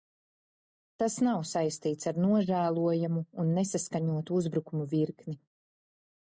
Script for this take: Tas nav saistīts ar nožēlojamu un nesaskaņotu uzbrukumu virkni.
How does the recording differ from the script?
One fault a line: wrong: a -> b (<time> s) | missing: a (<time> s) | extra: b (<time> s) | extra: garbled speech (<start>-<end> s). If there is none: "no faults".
no faults